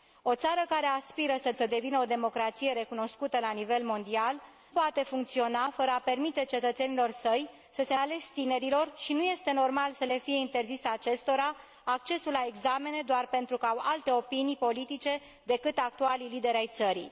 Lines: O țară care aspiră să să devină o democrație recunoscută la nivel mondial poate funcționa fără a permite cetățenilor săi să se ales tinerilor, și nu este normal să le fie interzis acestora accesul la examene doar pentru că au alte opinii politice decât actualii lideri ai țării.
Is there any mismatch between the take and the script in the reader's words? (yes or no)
no